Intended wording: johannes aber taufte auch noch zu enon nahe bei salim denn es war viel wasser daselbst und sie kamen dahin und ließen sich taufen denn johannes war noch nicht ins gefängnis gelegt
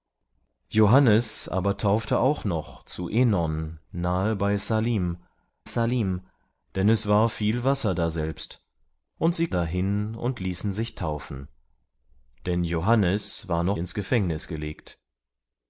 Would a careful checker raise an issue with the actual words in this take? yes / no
yes